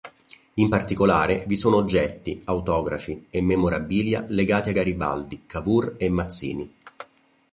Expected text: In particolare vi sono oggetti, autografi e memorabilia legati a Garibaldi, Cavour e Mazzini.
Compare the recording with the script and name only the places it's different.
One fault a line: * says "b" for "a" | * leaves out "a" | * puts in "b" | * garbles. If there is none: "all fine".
all fine